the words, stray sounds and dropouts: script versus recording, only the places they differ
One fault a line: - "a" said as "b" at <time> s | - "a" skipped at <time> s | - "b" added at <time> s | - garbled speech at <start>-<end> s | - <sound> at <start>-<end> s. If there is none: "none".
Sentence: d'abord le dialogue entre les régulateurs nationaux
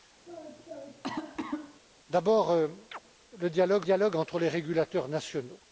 - cough at 0.3-1.8 s
- chirp at 2.9-3.0 s
- "dialogue" added at 3.8 s